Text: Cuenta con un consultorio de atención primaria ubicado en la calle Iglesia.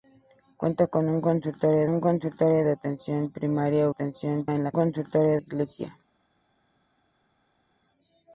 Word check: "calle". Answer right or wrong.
wrong